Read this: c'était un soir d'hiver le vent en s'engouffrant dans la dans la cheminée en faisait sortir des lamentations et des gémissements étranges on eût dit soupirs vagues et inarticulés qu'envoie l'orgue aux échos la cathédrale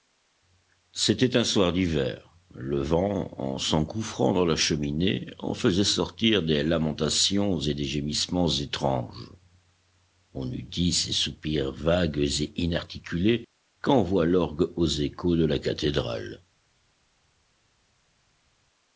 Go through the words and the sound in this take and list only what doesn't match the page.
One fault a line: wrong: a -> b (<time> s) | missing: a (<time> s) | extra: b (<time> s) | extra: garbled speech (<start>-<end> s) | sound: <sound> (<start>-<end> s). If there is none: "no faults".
missing: dans la (4.5 s)
extra: ces (10.9 s)
extra: de (15.3 s)